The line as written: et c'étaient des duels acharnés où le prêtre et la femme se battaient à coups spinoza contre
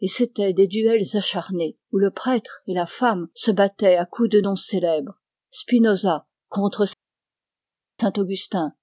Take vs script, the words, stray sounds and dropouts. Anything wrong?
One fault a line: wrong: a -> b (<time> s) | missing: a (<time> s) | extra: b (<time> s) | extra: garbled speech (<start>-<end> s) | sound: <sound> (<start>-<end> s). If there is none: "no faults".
extra: de noms célèbres (4.3 s)